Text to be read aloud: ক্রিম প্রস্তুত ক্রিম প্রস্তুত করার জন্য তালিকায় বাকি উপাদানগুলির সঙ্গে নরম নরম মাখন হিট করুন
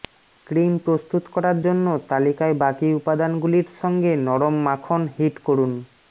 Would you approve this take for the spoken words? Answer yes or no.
no